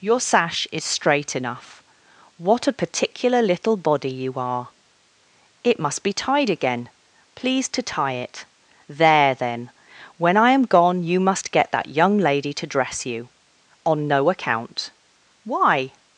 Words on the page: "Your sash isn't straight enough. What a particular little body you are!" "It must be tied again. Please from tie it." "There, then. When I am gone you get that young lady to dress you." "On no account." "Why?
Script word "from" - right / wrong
wrong